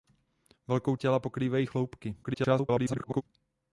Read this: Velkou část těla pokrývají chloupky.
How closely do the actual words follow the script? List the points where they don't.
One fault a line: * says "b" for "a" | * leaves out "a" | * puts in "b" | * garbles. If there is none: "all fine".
* leaves out "část"
* garbles